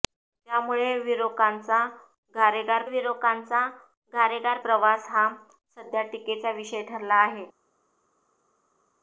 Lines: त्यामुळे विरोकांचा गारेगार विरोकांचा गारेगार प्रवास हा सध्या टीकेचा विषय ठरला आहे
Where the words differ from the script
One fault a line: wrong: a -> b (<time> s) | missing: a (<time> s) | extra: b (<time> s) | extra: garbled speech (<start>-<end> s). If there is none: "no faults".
no faults